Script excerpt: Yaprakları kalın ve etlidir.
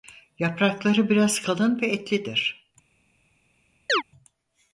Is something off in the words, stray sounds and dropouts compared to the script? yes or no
yes